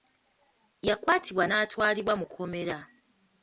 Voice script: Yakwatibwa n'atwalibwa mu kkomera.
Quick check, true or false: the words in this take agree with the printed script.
true